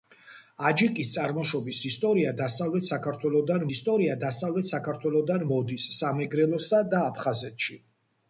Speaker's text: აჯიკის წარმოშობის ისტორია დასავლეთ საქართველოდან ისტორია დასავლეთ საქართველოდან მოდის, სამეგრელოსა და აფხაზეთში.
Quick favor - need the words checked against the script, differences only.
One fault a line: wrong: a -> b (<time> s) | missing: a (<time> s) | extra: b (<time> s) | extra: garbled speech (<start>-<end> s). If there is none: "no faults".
no faults